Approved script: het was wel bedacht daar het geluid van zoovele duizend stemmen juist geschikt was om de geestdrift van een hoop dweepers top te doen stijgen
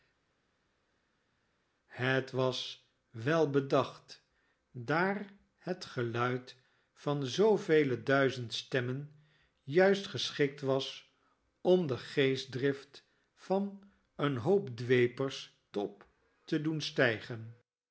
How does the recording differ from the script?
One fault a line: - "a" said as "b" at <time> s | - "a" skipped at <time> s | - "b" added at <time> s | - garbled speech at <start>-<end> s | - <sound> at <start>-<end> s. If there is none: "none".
none